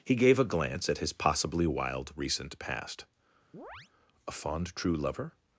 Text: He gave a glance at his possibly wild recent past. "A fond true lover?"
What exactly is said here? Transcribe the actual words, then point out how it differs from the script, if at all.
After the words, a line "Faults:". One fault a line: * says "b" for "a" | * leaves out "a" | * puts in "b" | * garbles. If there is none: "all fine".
He gave a glance at his possibly wild recent past. "A fond true lover?"
Faults:
all fine